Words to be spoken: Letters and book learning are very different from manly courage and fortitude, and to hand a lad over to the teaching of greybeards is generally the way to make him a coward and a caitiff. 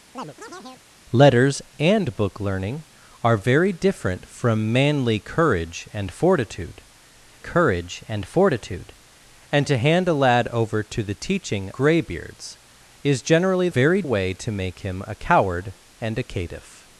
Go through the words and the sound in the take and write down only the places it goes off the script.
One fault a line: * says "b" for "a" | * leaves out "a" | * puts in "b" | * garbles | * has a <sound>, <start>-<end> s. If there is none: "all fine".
* has a chirp, 0.1-0.9 s
* puts in "courage"
* puts in "fortitude and"
* leaves out "of"
* says "very" for "the"